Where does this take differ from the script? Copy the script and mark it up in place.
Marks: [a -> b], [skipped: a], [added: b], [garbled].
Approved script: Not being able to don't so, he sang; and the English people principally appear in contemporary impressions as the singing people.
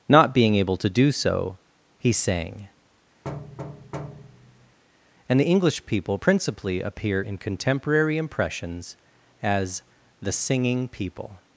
Not being able to [don't -> do] so, he sang; and the English people principally appear in contemporary impressions as the singing people.